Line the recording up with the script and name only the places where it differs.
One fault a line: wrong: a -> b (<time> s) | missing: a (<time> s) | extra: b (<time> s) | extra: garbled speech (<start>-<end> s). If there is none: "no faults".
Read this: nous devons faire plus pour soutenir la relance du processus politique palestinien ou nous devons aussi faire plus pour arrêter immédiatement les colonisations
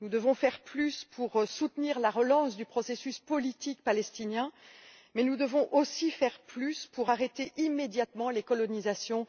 wrong: ou -> mais (5.1 s)